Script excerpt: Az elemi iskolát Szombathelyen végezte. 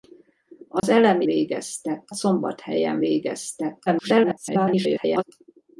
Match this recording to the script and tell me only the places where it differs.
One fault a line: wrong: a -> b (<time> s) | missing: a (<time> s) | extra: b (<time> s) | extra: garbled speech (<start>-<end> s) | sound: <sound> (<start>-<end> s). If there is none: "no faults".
sound: dropout (0.8-0.8 s)
wrong: iskolát -> végezte (1.2 s)
extra: garbled speech (3.9-5.2 s)